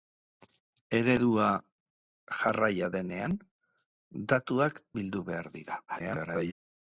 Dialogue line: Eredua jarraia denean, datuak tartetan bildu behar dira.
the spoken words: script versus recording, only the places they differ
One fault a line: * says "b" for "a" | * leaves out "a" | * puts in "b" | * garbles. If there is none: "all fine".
* leaves out "tartetan"
* garbles